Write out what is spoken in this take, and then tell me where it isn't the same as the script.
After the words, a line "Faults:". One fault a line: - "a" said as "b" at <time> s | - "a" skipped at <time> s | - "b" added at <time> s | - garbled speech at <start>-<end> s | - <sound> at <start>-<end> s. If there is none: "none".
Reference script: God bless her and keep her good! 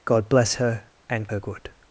God bless her and her good!
Faults:
- "keep" skipped at 1.3 s